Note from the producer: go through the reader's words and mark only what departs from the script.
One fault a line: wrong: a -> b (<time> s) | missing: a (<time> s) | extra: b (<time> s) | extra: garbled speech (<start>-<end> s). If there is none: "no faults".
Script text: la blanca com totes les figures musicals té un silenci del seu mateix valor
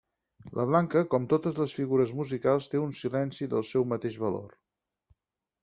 no faults